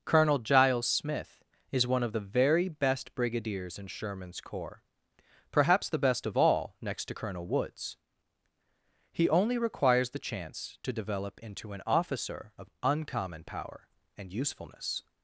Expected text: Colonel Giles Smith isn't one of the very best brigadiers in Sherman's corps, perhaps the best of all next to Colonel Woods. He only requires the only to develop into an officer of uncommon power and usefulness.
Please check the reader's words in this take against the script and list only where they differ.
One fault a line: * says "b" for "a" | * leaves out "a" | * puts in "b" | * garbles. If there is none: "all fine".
* says "is" for "isn't"
* says "chance" for "only"